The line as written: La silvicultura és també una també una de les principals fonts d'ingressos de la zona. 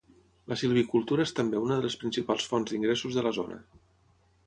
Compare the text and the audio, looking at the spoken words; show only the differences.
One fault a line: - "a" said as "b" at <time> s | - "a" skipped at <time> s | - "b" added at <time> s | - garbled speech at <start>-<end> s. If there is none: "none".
- "també una" skipped at 1.8 s